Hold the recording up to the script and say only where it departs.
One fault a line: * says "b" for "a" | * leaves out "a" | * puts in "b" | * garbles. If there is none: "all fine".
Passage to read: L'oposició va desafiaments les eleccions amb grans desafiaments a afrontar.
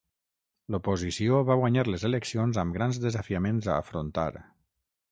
* says "guanyar" for "desafiaments"